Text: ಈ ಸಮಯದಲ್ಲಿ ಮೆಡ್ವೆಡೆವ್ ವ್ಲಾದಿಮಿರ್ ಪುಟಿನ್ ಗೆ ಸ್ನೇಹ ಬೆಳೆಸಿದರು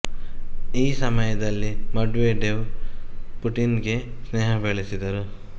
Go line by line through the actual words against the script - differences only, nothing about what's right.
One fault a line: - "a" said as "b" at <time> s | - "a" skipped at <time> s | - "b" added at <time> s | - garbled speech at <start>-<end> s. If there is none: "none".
- "ವ್ಲಾದಿಮಿರ್" skipped at 2.6 s